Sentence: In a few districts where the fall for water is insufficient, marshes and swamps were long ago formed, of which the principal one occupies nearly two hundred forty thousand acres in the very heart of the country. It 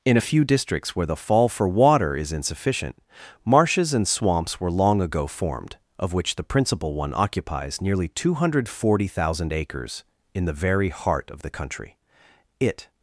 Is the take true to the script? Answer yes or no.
yes